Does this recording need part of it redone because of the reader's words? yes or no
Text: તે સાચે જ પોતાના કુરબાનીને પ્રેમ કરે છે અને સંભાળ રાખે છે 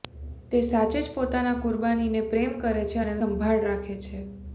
no